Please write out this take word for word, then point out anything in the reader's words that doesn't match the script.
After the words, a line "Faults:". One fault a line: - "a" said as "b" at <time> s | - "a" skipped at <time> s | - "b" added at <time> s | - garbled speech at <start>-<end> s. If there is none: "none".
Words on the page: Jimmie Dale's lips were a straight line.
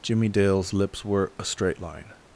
Jimmie Dale's lips were a straight line.
Faults:
none